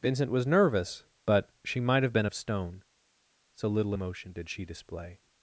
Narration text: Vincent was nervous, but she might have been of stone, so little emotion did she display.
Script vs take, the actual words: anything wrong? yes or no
no